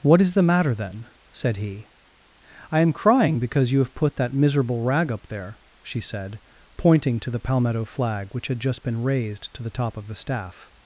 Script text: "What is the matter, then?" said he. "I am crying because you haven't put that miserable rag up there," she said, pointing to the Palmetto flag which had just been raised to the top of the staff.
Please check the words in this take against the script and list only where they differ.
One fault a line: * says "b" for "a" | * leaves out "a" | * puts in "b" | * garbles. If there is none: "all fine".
* says "have" for "haven't"